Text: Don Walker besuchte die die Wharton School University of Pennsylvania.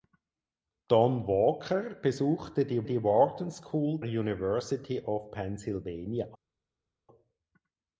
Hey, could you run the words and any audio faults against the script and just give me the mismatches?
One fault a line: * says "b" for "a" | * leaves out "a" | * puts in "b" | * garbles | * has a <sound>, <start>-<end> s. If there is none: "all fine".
all fine